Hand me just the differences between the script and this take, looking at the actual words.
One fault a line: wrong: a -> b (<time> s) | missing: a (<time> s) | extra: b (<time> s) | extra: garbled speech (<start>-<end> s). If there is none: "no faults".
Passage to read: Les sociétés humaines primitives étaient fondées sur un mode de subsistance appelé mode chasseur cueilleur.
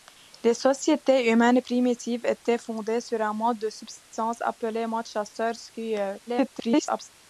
extra: garbled speech (6.3-7.1 s)